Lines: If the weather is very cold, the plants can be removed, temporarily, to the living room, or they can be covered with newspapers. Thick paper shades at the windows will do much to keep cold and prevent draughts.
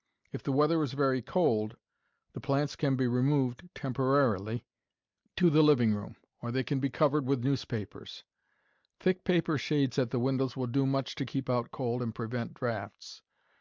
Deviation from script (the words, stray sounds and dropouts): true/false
true